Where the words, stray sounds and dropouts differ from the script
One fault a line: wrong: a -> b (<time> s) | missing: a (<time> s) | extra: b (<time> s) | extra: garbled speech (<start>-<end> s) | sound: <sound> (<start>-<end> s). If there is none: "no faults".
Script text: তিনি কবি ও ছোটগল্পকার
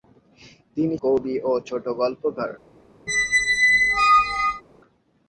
sound: squeak (3.1-4.6 s)